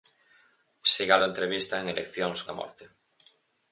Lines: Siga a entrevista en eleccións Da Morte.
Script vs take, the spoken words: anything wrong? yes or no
no